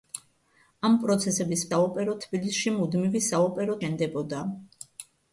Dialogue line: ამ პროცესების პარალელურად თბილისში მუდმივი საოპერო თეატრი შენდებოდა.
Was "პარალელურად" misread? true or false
true